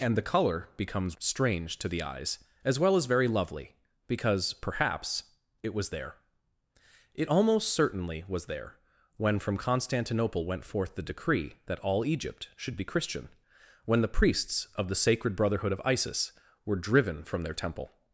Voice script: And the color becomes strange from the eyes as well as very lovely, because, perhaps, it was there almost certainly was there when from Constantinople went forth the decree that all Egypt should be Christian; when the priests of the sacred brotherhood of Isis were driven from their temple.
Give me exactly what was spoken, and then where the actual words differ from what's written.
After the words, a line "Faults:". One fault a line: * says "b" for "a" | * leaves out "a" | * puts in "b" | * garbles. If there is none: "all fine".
And the color becomes strange to the eyes as well as very lovely, because, perhaps, it was there it almost certainly was there when from Constantinople went forth the decree that all Egypt should be Christian; when the priests of the sacred brotherhood of Isis were driven from their temple.
Faults:
* says "to" for "from"
* puts in "it"